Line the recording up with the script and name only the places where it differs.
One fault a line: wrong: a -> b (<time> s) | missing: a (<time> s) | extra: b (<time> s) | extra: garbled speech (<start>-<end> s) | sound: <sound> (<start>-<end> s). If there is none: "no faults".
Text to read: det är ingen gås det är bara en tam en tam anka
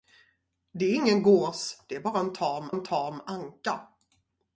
no faults